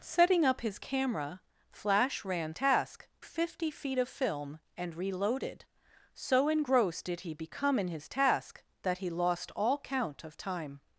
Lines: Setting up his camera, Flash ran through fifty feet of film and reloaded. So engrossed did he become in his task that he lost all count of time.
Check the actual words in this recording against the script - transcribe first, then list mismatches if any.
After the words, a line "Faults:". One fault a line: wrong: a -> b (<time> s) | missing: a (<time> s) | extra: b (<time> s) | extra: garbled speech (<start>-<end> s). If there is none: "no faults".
Setting up his camera, Flash ran task fifty feet of film and reloaded. So engrossed did he become in his task that he lost all count of time.
Faults:
wrong: through -> task (2.5 s)